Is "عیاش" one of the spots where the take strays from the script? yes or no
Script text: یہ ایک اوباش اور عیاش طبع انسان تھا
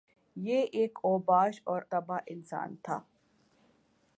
yes